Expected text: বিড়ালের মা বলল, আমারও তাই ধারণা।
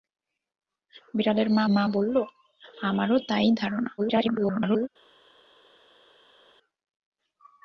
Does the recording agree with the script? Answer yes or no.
no